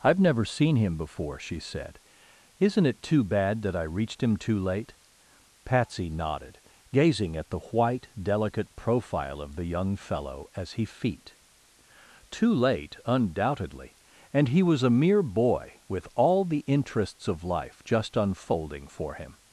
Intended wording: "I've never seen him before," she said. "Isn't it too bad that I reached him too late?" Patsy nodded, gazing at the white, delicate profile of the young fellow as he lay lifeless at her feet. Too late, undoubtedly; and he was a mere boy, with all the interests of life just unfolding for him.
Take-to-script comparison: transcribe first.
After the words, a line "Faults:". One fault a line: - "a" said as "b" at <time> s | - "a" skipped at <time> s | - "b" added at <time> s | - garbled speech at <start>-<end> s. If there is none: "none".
"I've never seen him before," she said. "Isn't it too bad that I reached him too late?" Patsy nodded, gazing at the white, delicate profile of the young fellow as he feet. Too late, undoubtedly; and he was a mere boy, with all the interests of life just unfolding for him.
Faults:
- "lay lifeless at her" skipped at 10.8 s